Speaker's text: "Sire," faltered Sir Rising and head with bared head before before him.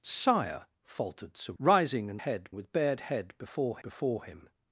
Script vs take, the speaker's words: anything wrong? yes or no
no